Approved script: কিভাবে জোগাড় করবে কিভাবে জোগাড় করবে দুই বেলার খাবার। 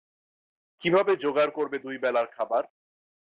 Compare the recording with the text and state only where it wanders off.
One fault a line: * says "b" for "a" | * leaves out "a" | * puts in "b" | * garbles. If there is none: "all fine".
* leaves out "কিভাবে জোগাড় করবে"